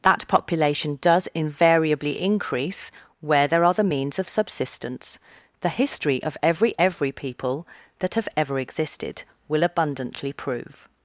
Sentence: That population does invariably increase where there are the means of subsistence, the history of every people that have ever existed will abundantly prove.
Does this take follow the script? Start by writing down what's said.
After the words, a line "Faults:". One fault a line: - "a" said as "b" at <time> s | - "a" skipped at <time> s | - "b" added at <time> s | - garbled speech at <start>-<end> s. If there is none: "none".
That population does invariably increase where there are the means of subsistence, the history of every every people that have ever existed will abundantly prove.
Faults:
- "every" added at 6.8 s